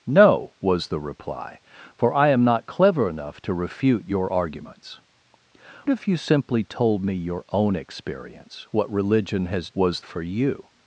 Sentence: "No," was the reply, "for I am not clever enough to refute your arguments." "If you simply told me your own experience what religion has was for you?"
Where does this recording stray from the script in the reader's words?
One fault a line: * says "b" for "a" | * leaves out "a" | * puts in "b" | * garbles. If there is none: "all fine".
all fine